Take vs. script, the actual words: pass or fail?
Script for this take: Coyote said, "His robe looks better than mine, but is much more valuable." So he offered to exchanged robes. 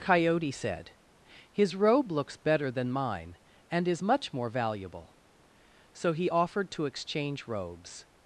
fail